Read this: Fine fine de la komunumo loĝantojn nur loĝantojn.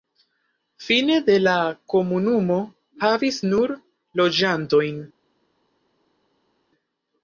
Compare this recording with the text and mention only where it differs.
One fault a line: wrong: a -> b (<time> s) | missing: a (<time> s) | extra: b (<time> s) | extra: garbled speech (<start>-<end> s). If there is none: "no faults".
missing: fine (1.2 s)
wrong: loĝantojn -> havis (3.1 s)